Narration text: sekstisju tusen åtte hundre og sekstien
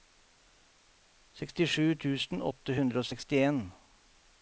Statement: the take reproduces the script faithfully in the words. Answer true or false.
true